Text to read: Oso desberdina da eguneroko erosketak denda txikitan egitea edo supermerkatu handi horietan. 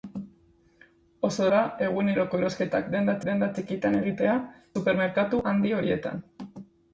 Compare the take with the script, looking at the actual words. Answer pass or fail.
fail